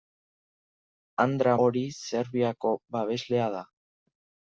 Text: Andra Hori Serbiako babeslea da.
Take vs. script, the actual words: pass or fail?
pass